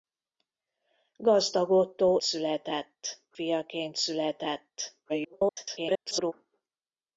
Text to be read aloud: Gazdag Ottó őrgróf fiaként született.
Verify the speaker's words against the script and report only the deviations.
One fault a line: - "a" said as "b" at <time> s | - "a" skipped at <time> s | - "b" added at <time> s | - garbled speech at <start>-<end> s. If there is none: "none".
- "őrgróf" said as "született" at 2.2 s
- garbled speech at 5.1-6.3 s